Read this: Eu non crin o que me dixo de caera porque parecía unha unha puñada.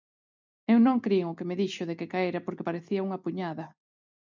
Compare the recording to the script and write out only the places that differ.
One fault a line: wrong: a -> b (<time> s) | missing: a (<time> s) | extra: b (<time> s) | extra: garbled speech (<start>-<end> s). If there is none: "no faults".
extra: que (2.0 s)
missing: unha (3.2 s)